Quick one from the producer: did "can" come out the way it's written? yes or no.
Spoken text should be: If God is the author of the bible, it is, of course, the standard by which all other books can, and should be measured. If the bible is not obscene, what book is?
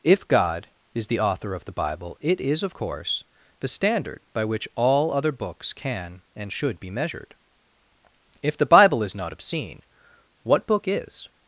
yes